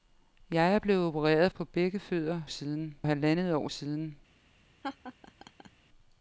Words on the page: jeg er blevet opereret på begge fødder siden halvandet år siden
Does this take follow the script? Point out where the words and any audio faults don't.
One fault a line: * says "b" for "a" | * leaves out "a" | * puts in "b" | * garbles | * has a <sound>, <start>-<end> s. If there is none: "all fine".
* has a laugh, 4.8-5.7 s